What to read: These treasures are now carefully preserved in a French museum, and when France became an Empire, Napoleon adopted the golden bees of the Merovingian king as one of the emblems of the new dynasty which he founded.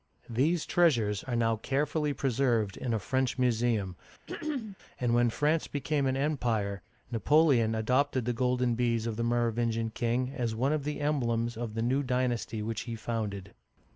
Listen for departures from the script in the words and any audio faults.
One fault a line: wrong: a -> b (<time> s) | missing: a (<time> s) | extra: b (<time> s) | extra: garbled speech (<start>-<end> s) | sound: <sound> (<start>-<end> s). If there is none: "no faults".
sound: throat clearing (4.3-4.8 s)